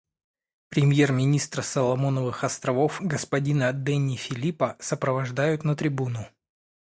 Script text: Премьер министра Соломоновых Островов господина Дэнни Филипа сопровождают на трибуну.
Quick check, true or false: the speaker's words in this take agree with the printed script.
true